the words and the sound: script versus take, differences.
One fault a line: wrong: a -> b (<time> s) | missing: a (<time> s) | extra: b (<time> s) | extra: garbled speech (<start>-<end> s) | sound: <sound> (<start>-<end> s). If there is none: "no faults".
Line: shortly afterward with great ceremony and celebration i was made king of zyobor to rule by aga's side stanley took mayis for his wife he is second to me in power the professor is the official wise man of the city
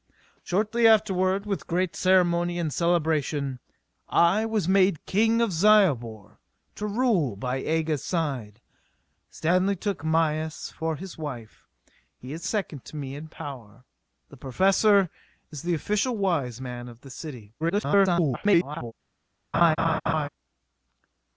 extra: garbled speech (17.6-18.9 s)
sound: laugh (19.5-20.3 s)